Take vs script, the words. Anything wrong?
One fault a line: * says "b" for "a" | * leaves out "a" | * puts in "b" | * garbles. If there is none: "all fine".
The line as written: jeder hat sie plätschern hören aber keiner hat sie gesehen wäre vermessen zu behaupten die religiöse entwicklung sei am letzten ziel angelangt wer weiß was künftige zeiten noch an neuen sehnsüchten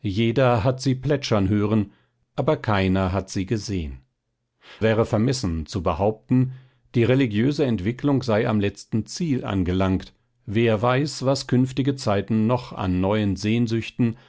all fine